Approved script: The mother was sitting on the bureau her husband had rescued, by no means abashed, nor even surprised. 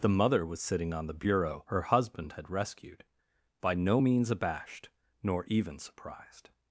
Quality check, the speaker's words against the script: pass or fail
pass